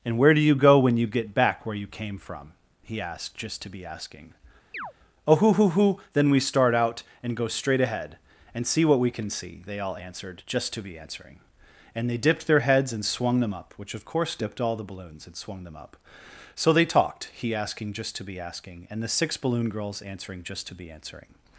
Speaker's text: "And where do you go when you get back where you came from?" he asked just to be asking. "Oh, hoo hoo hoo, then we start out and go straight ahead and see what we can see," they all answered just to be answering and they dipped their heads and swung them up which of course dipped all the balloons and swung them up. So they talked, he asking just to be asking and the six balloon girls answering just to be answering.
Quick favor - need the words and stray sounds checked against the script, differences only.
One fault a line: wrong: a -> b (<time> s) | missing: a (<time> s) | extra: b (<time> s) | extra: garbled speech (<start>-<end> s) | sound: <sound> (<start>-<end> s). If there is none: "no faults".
sound: chirp (4.7-4.9 s)